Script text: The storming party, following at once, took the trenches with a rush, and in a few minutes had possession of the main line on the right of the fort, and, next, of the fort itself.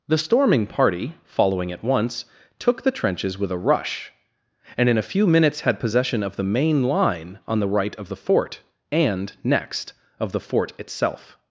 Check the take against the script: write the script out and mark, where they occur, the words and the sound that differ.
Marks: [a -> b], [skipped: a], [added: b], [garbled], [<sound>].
The storming party, following at once, took the trenches with a rush, and in a few minutes had possession of the main line on the right of the fort, and, next, of the fort itself.